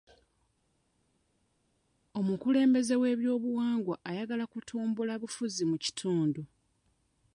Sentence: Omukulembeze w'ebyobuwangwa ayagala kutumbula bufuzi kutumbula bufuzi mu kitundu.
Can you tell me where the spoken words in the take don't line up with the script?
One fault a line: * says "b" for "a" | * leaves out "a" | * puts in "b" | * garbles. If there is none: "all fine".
* leaves out "kutumbula bufuzi"